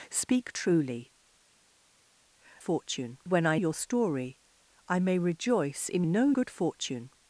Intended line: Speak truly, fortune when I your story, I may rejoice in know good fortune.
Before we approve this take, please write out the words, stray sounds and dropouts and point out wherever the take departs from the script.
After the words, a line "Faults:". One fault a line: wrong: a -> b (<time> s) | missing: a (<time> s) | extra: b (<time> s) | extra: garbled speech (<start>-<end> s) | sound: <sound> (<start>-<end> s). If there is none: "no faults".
Speak truly, fortune when I your story, I may rejoice in know good fortune.
Faults:
no faults